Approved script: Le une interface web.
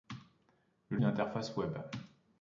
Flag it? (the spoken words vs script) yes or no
no